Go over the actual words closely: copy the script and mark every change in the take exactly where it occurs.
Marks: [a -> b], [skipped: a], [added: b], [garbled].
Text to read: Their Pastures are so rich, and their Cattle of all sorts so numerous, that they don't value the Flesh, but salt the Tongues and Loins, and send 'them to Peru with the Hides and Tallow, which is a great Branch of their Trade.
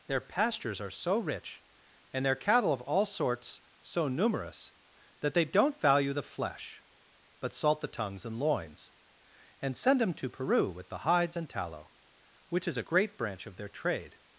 Their Pastures are so rich, and their Cattle of all sorts so numerous, that they don't value the Flesh, but salt the Tongues and Loins, and send 'them to Peru with the Hides and Tallow, which is a great Branch of their Trade.